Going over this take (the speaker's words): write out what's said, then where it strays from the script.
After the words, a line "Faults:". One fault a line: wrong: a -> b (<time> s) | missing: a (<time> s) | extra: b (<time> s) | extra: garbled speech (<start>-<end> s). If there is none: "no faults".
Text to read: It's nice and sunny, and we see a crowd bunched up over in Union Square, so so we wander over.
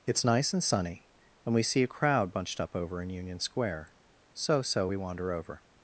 It's nice and sunny, and we see a crowd bunched up over in Union Square, so so we wander over.
Faults:
no faults